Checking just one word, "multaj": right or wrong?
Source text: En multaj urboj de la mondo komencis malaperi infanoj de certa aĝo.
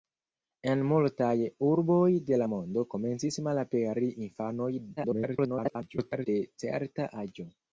right